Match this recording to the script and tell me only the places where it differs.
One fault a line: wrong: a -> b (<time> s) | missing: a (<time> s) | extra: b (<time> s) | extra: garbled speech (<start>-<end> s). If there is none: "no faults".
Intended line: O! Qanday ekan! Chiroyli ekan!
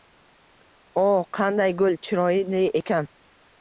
wrong: ekan -> gul (1.9 s)